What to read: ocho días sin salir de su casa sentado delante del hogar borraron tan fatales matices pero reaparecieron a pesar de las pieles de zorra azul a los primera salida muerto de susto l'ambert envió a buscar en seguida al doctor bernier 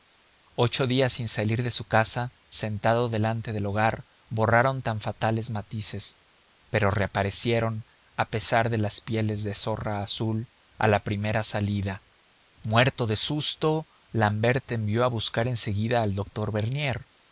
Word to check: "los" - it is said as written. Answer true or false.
false